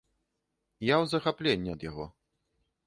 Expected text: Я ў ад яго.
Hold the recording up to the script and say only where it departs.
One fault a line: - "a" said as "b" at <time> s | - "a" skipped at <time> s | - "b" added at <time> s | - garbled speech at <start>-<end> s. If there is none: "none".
- "захапленні" added at 1.1 s